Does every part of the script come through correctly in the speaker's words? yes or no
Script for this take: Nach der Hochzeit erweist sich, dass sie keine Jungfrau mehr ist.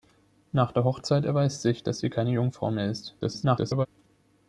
no